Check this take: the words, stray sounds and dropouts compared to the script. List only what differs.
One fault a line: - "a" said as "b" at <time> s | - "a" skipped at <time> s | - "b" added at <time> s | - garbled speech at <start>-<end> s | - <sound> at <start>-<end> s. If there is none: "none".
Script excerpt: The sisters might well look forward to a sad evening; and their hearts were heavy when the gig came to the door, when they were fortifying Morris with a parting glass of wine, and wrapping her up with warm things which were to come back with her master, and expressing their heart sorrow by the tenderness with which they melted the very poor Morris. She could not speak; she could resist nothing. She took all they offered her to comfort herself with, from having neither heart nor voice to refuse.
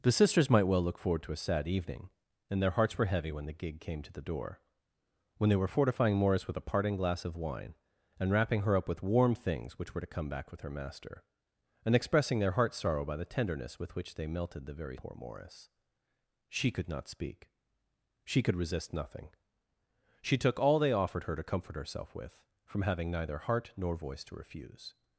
none